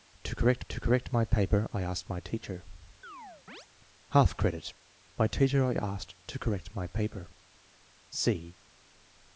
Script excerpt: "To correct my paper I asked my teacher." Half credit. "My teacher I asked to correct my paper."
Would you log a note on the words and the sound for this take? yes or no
yes